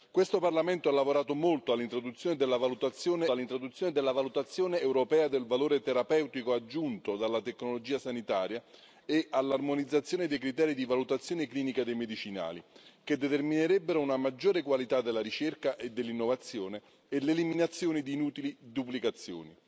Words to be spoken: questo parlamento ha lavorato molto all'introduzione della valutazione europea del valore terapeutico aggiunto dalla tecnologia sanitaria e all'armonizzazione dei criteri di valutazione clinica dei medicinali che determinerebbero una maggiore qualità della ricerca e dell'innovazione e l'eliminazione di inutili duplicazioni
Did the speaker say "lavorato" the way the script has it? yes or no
yes